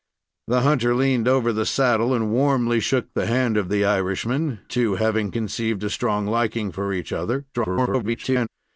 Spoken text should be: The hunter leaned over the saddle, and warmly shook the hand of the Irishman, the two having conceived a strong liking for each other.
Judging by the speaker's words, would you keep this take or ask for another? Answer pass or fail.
fail